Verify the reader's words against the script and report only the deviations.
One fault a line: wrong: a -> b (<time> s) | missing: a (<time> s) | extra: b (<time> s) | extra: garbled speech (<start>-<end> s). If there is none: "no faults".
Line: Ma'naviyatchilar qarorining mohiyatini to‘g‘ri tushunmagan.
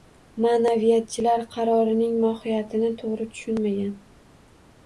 no faults